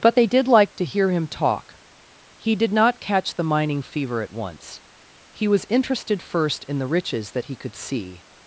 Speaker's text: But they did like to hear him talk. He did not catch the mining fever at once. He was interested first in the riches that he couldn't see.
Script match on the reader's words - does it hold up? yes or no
no